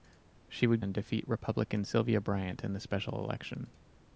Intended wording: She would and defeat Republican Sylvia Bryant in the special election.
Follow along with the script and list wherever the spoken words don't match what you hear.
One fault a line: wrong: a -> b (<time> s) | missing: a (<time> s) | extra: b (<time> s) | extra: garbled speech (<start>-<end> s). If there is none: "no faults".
no faults